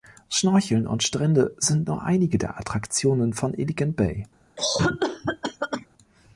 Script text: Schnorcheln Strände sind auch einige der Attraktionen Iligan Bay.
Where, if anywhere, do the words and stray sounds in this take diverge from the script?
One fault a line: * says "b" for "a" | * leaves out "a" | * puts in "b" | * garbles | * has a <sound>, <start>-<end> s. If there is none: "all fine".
* puts in "und"
* says "nur" for "auch"
* puts in "von"
* has a cough, 4.6-5.9 s